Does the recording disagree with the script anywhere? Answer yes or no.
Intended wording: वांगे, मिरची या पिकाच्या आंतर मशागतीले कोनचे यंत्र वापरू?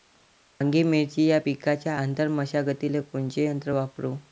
no